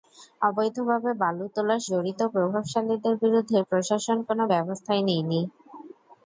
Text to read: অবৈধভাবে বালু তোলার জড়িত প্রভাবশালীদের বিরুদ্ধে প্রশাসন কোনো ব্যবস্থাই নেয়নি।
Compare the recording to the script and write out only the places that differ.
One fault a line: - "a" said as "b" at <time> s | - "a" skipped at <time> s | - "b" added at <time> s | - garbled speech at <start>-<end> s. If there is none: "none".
none